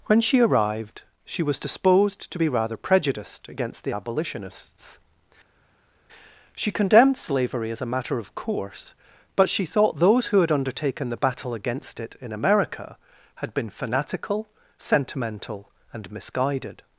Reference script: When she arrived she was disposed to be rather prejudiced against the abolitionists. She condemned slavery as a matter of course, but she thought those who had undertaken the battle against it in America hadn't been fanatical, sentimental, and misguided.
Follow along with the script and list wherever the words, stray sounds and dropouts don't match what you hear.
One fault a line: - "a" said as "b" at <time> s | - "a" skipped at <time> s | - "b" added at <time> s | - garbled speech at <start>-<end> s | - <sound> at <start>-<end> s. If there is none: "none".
- "hadn't" said as "had" at 13.3 s